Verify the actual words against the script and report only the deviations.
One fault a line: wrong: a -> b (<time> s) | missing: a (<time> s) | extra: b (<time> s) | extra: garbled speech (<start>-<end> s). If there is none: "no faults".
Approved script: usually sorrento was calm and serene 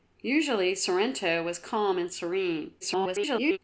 extra: garbled speech (2.8-3.6 s)